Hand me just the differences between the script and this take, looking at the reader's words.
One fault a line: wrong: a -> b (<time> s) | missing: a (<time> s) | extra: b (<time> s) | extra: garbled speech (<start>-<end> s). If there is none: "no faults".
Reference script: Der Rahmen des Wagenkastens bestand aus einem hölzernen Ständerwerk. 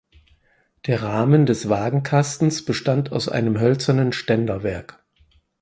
no faults